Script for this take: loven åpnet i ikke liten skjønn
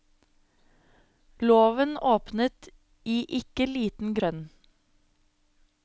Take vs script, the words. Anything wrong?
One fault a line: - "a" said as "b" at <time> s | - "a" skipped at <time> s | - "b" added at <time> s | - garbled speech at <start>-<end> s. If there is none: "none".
none